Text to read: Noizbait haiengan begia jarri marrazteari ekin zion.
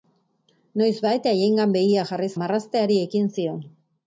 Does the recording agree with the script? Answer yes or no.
yes